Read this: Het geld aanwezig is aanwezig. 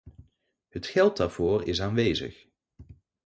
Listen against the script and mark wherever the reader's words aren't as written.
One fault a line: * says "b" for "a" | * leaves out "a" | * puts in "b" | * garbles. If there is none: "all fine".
* says "daarvoor" for "aanwezig"